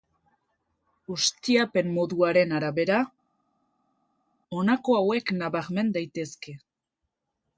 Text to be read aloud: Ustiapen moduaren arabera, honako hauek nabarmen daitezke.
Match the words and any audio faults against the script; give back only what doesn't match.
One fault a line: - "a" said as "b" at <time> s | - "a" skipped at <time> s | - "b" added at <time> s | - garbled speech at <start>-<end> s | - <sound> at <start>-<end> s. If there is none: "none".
none